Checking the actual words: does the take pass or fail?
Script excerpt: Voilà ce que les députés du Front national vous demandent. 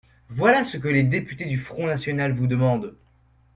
pass